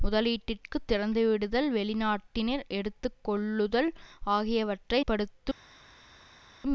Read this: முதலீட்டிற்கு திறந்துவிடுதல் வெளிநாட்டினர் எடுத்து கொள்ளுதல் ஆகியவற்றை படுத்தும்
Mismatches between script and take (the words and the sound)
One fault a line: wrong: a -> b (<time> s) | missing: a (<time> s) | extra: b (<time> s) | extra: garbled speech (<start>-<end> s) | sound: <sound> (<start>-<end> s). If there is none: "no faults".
no faults